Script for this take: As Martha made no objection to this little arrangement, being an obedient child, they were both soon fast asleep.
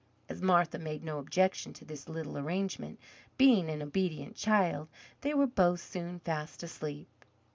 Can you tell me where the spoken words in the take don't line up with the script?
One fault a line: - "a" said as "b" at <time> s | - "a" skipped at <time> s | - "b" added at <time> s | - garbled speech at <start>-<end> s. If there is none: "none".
none